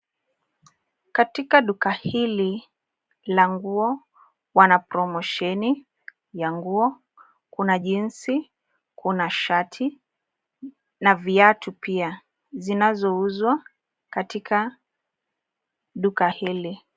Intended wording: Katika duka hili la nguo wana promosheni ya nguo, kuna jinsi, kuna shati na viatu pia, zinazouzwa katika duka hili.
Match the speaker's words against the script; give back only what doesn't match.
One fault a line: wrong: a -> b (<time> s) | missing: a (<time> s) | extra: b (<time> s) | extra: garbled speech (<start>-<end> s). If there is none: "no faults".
no faults